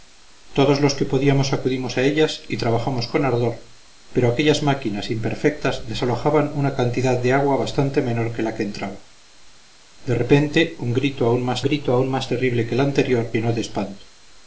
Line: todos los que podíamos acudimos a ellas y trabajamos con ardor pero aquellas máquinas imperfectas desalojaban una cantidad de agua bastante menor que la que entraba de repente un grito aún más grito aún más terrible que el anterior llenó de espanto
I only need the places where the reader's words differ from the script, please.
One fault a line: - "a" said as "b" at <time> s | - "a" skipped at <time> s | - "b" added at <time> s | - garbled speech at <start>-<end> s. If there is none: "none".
none